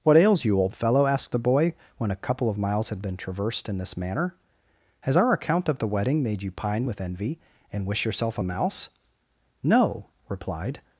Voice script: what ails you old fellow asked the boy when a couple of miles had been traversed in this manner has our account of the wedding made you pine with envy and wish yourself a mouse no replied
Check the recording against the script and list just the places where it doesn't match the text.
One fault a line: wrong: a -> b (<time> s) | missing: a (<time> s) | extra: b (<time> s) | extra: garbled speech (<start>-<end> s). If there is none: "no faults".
no faults